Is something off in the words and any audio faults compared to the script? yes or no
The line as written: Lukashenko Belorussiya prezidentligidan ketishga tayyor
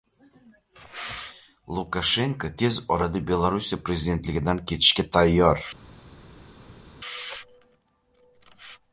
yes